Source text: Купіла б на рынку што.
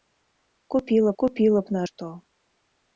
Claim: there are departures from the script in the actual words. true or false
true